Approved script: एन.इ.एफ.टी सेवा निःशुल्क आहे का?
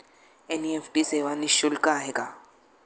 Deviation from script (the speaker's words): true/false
false